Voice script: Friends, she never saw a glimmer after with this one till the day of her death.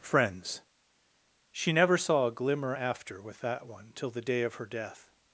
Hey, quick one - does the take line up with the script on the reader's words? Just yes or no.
no